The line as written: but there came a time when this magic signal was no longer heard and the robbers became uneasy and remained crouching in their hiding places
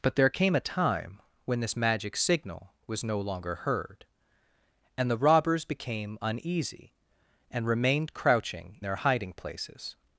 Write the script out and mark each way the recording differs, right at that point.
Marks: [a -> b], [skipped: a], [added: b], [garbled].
but there came a time when this magic signal was no longer heard and the robbers became uneasy and remained crouching [skipped: in] their hiding places